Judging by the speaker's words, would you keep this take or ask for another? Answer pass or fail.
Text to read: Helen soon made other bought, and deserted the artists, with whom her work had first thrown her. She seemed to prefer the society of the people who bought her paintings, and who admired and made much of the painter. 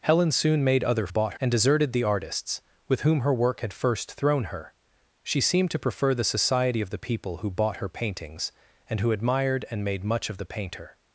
pass